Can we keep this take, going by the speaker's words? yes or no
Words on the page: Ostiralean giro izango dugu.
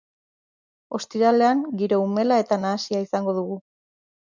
no